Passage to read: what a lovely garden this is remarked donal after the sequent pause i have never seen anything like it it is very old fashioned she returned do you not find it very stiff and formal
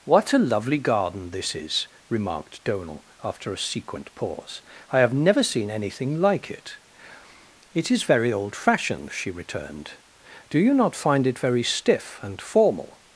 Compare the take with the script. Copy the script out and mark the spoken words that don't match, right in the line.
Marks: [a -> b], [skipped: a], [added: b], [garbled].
what a lovely garden this is remarked donal after [the -> a] sequent pause i have never seen anything like it it is very old fashioned she returned do you not find it very stiff and formal